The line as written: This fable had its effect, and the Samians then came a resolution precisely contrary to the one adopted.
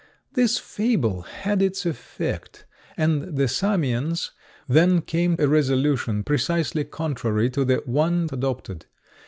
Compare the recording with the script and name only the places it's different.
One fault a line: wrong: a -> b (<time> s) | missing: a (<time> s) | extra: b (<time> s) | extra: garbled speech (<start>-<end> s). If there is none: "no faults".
no faults